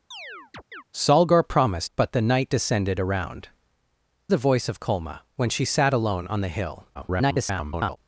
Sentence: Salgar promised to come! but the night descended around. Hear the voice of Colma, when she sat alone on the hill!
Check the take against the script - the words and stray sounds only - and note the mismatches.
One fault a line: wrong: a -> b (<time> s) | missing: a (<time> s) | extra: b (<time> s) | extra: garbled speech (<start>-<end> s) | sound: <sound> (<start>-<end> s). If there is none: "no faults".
sound: chirp (0.1-0.8 s)
missing: to come (1.9 s)
missing: Hear (3.5 s)
extra: garbled speech (6.9-8.0 s)